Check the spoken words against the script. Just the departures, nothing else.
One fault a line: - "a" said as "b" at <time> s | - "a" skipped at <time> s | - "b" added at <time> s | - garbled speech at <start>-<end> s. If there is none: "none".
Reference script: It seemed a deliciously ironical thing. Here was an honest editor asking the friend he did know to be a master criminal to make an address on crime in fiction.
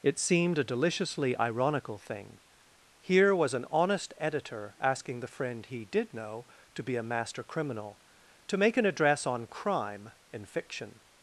none